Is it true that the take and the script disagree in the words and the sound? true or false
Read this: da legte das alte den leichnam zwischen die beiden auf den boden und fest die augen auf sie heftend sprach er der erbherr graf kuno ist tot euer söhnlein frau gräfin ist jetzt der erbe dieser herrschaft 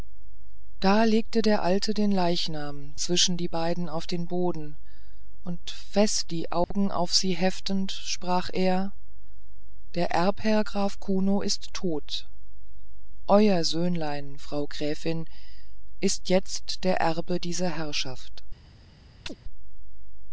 true